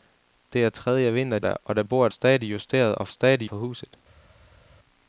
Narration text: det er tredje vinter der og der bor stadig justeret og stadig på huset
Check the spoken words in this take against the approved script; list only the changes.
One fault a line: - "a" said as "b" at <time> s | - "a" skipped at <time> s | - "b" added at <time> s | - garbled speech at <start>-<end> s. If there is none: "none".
none